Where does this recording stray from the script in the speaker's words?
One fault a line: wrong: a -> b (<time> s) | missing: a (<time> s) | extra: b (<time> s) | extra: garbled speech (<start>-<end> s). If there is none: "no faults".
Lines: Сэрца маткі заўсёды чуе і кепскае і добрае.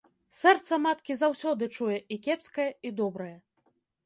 no faults